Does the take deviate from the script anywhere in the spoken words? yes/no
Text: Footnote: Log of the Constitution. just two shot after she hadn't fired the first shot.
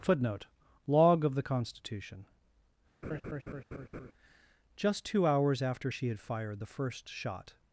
yes